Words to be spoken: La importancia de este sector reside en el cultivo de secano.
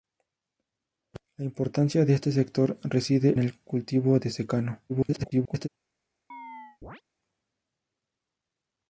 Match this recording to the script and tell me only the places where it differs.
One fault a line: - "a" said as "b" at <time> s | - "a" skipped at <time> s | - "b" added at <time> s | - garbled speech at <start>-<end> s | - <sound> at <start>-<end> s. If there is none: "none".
- "en" skipped at 3.4 s
- garbled speech at 4.9-5.7 s
- chirp at 6.3-7.0 s